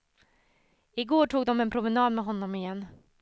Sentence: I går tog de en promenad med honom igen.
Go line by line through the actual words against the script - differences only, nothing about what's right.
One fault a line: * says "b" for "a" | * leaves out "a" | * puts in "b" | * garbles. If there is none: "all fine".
all fine